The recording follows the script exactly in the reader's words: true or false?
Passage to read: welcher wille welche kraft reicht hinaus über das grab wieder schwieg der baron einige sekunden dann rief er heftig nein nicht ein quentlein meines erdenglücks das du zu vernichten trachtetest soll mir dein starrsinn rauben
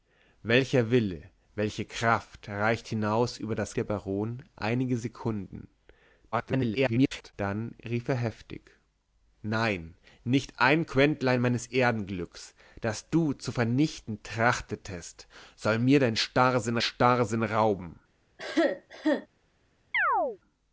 false